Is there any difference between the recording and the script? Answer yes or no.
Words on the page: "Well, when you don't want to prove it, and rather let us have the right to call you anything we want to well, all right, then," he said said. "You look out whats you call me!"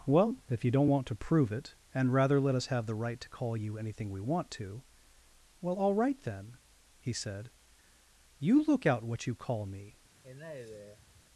yes